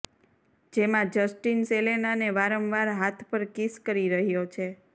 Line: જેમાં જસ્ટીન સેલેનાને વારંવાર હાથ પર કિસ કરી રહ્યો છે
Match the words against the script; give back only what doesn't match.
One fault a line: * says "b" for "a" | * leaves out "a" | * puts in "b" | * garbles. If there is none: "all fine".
all fine